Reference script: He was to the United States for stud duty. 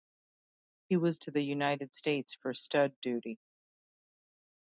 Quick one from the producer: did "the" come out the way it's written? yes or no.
yes